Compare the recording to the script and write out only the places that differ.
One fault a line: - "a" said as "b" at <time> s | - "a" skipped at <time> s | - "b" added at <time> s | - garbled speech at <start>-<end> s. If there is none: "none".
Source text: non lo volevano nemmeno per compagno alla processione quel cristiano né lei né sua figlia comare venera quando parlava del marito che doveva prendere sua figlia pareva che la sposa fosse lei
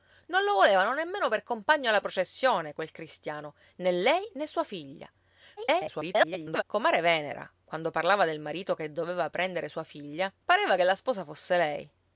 - garbled speech at 5.6-6.6 s